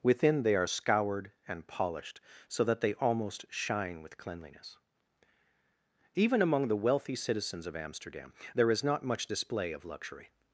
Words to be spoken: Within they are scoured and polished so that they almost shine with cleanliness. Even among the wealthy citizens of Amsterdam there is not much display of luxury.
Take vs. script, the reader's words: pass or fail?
pass